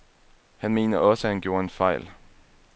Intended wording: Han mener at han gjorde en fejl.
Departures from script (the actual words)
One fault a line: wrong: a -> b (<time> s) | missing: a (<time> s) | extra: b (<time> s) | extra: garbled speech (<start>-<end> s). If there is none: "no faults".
extra: også (1.0 s)